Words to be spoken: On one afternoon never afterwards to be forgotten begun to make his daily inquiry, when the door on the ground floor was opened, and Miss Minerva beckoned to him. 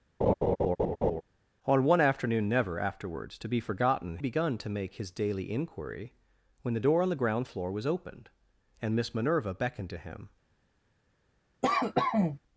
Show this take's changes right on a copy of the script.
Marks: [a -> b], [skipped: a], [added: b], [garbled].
On one afternoon never afterwards to be forgotten begun to make his daily inquiry, when the door on the ground floor was opened, and Miss Minerva beckoned to him.